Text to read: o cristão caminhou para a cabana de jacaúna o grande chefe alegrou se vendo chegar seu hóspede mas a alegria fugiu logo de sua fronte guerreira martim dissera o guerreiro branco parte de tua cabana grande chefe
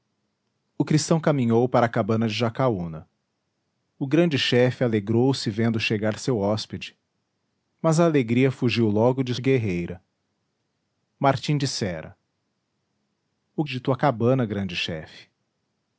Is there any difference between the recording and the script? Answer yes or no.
yes